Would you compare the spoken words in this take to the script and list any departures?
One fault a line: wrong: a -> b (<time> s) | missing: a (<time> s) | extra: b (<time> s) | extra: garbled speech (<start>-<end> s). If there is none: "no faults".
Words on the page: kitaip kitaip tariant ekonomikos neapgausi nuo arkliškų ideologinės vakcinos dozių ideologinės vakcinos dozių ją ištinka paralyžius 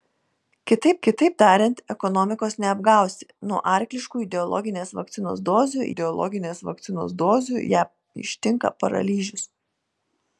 no faults